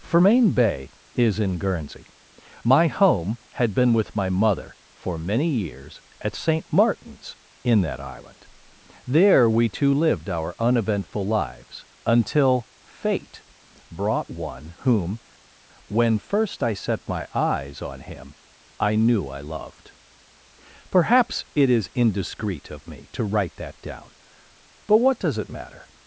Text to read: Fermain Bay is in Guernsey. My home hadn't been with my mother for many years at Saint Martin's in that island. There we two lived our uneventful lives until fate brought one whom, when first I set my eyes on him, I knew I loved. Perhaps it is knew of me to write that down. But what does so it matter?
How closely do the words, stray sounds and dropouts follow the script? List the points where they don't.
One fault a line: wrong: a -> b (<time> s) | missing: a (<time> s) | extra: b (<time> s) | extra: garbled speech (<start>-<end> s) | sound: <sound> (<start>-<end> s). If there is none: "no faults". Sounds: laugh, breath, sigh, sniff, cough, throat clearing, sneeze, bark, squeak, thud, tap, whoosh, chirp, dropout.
wrong: hadn't -> had (3.5 s)
wrong: knew -> indiscreet (21.9 s)
missing: so (25.4 s)